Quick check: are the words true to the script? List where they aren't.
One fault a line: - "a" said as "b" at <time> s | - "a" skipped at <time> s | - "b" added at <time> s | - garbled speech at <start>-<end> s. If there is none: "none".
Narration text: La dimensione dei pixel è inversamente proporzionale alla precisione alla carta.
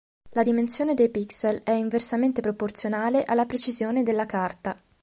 - "alla" said as "della" at 4.0 s